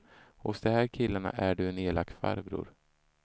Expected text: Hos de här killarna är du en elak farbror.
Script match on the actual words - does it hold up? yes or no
yes